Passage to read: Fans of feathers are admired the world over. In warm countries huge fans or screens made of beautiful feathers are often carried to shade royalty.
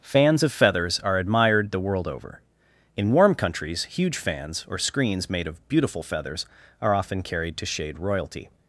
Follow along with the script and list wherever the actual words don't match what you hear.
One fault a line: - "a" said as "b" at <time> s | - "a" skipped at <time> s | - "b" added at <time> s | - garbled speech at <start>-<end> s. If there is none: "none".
none